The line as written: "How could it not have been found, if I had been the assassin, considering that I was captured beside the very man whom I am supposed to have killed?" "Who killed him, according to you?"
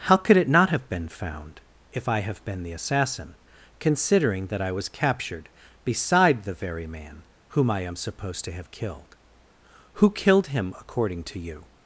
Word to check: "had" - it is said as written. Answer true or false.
false